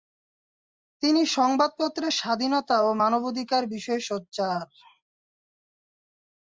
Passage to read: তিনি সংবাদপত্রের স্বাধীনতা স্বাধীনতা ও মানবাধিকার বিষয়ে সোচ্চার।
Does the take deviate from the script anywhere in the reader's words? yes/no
yes